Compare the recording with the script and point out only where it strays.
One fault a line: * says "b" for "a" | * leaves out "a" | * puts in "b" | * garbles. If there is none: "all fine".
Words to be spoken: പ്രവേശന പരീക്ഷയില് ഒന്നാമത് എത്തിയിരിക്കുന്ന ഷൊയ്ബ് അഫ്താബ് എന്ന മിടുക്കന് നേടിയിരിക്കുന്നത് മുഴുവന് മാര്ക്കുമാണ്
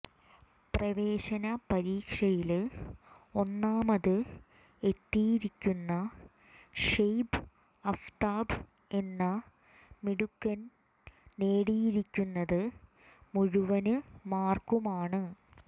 all fine